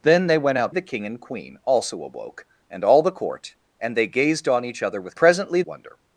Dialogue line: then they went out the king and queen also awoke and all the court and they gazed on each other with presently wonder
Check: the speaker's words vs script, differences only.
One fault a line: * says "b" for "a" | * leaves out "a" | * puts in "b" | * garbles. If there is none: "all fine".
all fine